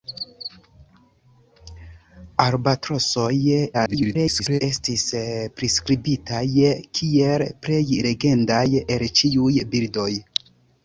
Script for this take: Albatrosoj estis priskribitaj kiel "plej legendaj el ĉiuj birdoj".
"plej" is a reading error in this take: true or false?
false